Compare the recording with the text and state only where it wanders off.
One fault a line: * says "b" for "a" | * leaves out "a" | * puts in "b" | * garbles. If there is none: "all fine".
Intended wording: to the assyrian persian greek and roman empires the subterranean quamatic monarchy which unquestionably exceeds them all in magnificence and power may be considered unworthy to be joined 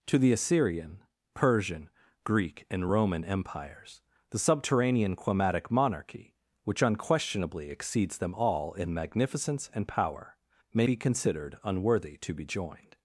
all fine